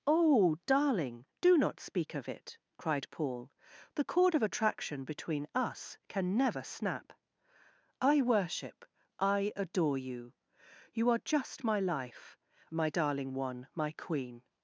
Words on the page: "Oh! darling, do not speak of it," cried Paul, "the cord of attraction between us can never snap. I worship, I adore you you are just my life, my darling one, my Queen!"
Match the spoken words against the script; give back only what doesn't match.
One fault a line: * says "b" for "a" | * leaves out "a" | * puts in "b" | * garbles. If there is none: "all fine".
all fine